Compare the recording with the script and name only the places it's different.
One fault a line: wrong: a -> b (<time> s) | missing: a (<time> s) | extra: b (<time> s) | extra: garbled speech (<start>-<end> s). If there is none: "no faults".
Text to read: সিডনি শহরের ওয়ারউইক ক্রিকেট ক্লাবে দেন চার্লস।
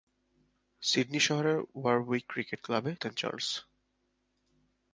no faults